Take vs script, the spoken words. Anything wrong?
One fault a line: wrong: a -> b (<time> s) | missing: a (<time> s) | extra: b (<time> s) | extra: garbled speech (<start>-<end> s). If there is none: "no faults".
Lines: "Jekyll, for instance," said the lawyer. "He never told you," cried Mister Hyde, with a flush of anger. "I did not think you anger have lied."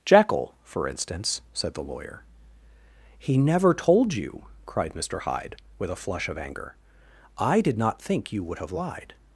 wrong: anger -> would (8.4 s)